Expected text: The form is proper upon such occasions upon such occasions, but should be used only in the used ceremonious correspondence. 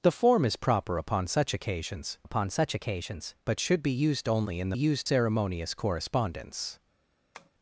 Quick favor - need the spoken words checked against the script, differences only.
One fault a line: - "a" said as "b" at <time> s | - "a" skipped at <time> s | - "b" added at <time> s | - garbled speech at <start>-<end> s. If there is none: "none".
none